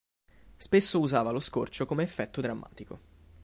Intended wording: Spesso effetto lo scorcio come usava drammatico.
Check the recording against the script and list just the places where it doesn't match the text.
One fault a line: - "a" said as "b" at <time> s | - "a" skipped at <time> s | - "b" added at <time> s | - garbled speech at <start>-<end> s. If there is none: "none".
- "effetto" said as "usava" at 1.0 s
- "usava" said as "effetto" at 2.0 s